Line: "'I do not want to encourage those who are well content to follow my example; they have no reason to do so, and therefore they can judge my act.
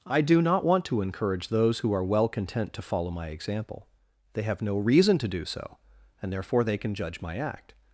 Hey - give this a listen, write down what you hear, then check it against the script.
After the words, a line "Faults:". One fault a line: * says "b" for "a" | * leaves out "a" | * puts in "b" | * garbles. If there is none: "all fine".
"'I do not want to encourage those who are well content to follow my example; they have no reason to do so, and therefore they can judge my act.
Faults:
all fine